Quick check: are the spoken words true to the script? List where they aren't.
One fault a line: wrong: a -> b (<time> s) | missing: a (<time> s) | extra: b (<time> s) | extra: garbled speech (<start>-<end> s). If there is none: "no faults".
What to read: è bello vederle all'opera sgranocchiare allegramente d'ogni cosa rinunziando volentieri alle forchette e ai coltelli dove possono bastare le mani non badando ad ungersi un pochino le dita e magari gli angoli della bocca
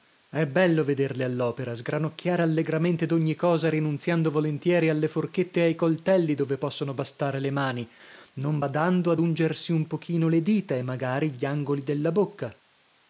no faults